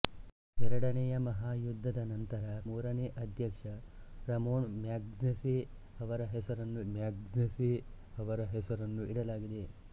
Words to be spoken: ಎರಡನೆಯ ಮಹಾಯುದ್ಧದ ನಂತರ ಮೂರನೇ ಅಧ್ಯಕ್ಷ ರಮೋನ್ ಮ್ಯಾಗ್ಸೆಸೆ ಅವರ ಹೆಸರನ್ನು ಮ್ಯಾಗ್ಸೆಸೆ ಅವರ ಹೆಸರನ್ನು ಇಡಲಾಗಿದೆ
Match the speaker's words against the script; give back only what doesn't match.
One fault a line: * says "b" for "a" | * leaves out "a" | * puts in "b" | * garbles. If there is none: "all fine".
all fine